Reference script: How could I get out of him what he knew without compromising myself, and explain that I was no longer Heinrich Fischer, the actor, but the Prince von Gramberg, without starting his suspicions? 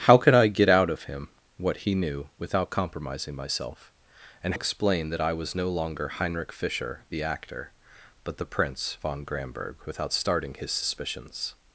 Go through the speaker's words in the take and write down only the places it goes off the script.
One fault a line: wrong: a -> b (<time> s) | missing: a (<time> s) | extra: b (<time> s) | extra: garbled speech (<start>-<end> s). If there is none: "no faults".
no faults